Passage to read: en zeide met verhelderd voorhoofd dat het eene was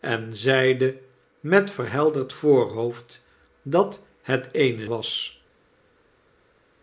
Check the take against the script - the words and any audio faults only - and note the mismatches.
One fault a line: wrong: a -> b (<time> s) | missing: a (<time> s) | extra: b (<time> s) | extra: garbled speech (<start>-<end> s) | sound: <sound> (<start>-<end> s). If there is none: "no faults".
no faults